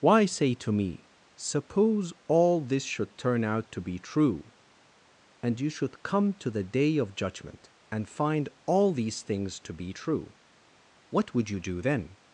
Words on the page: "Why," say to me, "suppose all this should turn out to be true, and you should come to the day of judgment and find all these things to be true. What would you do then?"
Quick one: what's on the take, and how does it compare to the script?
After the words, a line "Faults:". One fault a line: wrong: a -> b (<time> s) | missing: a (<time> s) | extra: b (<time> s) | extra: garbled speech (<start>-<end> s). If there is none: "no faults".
"Why," say to me, "suppose all this should turn out to be true, and you should come to the day of judgment and find all these things to be true. What would you do then?"
Faults:
no faults